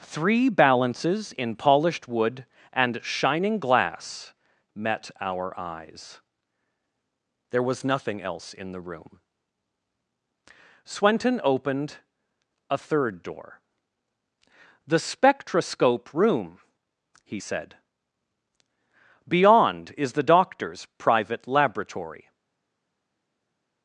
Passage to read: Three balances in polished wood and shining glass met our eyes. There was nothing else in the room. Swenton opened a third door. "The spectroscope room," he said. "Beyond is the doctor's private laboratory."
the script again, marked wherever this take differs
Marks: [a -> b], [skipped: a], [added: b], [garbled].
Three balances in polished wood and shining glass met our eyes. There was nothing else in the room. Swenton opened a third door. "The spectroscope room," he said. "Beyond is the doctor's private laboratory."